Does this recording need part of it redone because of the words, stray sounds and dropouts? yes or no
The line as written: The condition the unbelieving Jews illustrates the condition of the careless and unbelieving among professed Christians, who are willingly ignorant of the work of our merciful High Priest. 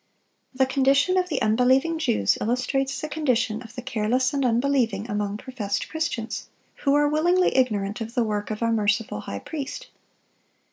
yes